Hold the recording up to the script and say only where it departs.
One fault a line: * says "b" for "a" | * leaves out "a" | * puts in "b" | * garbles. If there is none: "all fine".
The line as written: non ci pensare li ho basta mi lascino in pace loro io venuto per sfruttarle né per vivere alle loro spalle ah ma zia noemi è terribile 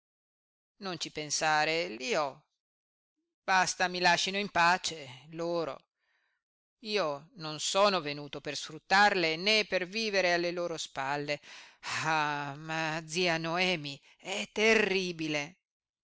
* puts in "non sono"